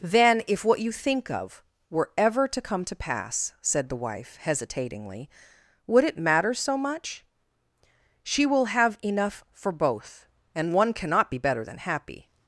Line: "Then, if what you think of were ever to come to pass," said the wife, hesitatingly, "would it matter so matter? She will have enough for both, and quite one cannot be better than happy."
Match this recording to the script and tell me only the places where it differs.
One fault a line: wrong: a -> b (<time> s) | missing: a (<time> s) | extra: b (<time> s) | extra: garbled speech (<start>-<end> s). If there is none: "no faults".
wrong: matter -> much (6.8 s)
missing: quite (10.7 s)